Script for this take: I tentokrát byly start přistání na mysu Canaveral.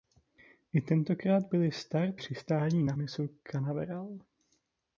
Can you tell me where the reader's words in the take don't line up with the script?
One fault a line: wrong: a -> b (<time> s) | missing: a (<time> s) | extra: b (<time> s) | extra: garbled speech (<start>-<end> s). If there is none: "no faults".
no faults